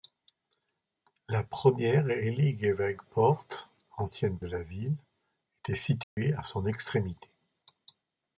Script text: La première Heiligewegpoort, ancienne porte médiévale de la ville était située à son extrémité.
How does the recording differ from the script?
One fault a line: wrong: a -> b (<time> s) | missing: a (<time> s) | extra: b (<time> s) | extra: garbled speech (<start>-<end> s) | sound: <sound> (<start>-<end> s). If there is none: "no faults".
missing: porte médiévale (4.4 s)
sound: dropout (6.0-6.2 s)